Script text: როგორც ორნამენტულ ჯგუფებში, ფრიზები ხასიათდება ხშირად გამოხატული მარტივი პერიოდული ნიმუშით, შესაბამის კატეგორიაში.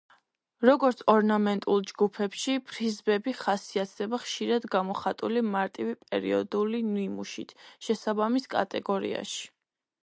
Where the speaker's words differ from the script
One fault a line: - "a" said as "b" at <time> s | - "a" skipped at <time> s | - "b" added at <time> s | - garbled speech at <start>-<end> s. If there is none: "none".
none